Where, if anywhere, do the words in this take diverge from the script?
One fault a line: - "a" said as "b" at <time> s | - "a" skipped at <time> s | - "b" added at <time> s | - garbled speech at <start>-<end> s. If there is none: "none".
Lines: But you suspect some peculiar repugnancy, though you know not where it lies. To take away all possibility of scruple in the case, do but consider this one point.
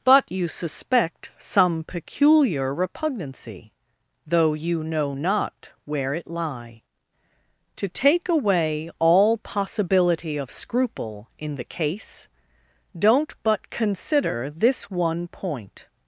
- "lies" said as "lie" at 6.3 s
- "do" said as "don't" at 13.0 s